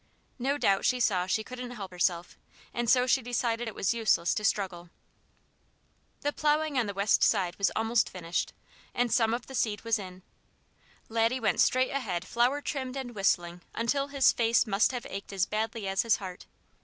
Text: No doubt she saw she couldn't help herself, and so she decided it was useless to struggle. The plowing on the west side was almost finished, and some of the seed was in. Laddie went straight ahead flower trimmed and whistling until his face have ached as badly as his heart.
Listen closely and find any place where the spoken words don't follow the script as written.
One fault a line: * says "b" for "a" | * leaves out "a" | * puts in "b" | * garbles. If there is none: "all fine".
* puts in "must"